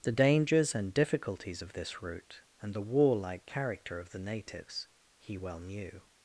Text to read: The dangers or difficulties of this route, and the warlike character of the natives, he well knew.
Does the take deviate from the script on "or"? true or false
true